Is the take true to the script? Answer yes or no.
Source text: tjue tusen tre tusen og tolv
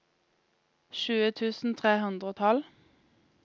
no